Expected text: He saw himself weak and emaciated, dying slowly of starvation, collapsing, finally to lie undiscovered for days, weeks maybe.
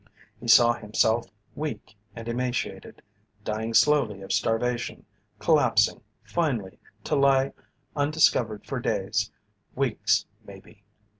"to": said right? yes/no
yes